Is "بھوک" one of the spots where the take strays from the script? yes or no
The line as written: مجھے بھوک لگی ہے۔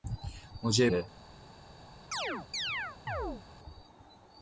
yes